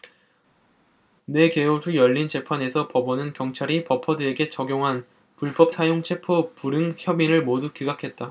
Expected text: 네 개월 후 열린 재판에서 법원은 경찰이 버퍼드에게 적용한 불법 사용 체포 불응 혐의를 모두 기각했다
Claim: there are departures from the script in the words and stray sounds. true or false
false